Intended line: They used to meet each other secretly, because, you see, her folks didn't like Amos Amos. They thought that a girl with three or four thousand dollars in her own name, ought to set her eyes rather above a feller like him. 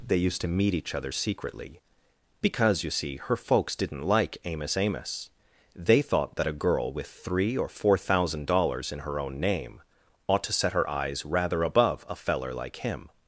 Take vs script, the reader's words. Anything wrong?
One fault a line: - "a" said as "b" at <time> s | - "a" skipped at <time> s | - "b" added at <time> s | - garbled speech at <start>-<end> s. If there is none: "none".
none